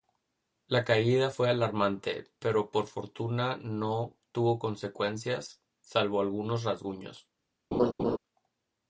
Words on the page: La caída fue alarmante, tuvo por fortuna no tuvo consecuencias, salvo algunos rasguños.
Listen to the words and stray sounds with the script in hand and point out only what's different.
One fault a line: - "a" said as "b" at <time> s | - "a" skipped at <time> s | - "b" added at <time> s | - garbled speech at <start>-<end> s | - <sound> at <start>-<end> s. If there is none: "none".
- "tuvo" said as "pero" at 2.4 s
- laugh at 7.7-8.2 s